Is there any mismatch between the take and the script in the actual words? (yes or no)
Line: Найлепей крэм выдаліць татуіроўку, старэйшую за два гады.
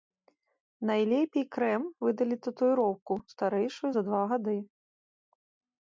no